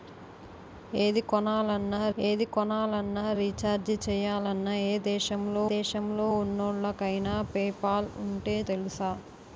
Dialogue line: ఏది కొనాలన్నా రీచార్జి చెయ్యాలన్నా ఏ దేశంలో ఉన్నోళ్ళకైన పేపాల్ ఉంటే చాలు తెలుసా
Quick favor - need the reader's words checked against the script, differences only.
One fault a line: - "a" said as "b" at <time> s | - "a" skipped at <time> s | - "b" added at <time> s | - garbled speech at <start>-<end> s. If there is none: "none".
- "ఏది కొనాలన్నా" added at 2.2 s
- "దేశంలో" added at 5.7 s
- "చాలు" skipped at 8.6 s